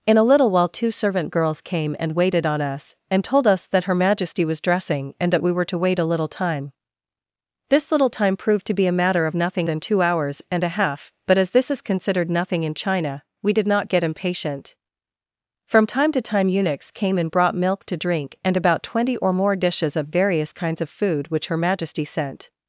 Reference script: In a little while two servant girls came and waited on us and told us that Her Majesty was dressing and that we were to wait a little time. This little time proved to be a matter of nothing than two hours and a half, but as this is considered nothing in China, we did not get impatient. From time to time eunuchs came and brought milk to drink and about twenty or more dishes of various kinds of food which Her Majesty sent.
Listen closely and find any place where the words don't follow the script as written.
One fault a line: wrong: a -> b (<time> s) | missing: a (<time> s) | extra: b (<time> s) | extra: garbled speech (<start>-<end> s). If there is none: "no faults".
no faults